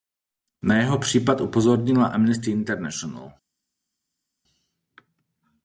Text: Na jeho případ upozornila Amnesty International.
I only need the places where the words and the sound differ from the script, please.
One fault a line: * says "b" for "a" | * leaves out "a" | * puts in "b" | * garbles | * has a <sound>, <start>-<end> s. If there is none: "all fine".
all fine